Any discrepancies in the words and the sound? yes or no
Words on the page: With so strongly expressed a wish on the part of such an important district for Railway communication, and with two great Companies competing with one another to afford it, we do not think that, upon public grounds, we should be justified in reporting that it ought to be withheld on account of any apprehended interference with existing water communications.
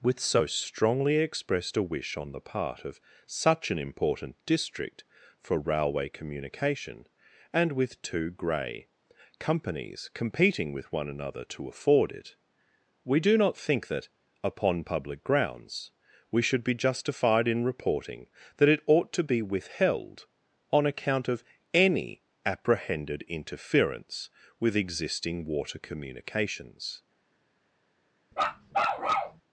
yes